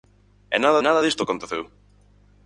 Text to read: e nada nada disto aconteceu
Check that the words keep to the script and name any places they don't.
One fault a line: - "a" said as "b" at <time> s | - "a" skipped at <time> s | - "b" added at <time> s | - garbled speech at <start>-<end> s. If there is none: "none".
none